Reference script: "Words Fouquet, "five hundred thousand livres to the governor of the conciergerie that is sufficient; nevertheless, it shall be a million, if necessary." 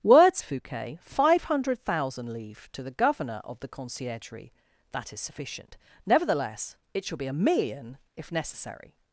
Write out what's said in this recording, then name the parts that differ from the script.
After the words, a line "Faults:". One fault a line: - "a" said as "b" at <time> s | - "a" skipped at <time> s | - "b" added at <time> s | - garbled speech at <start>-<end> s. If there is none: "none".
"Words Fouquet, "five hundred thousand livres to the governor of the conciergerie that is sufficient; nevertheless, it shall be a million, if necessary."
Faults:
none